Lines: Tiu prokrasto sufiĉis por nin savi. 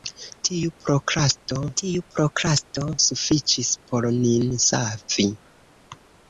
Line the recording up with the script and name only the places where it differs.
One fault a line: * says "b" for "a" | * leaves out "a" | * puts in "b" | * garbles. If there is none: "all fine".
* puts in "tiu prokrasto"